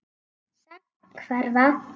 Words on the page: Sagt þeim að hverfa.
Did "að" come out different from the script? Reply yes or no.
yes